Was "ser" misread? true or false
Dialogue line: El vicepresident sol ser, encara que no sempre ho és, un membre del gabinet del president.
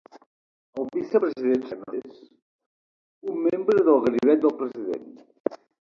true